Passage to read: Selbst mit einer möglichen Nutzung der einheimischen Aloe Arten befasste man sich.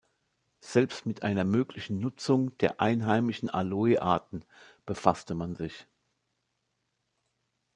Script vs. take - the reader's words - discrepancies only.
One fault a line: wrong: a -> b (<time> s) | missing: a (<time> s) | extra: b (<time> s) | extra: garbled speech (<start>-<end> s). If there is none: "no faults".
no faults